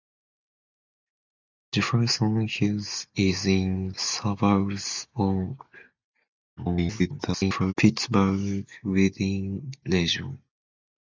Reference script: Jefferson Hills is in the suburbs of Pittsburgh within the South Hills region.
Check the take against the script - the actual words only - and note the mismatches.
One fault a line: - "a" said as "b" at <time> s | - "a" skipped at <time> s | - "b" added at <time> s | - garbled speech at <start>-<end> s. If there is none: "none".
- "the" skipped at 3.9 s
- garbled speech at 6.6-7.7 s
- "the South Hills" skipped at 9.7 s